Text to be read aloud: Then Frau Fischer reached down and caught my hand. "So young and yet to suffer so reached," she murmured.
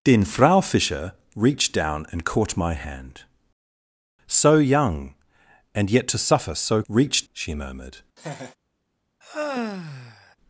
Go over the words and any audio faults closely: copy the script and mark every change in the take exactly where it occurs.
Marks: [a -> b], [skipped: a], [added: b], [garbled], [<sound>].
Then Frau Fischer reached down and caught my hand. "So young and yet to suffer so reached," she murmured. [laugh] [sigh]